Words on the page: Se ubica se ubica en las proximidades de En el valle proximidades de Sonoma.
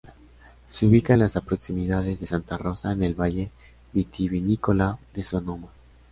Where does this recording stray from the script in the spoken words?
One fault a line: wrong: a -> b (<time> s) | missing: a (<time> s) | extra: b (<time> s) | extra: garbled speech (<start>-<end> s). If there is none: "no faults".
missing: se ubica (1.1 s)
extra: Santa Rosa (2.2 s)
wrong: proximidades -> vitivinícola (3.9 s)